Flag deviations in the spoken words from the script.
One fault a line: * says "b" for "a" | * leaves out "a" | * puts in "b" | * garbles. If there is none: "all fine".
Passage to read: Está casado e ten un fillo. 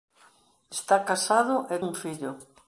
* leaves out "ten"